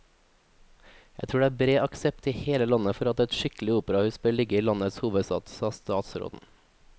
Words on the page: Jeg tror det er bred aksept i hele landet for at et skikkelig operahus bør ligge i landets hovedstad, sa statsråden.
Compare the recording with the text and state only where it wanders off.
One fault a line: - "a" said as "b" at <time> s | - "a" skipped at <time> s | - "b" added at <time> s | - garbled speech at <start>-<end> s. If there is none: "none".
none